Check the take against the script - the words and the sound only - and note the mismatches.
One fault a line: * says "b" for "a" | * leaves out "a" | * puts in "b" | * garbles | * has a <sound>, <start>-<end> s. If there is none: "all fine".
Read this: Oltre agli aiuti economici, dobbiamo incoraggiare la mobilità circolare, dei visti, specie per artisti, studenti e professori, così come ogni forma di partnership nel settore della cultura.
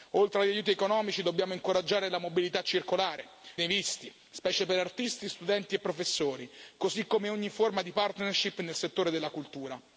all fine